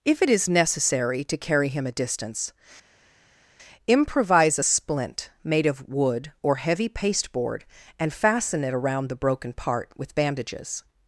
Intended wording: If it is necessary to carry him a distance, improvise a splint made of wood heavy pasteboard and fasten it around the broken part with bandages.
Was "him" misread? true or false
false